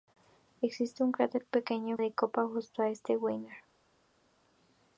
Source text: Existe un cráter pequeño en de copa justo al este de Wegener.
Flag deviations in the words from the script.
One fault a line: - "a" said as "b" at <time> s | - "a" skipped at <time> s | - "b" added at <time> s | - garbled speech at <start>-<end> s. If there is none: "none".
none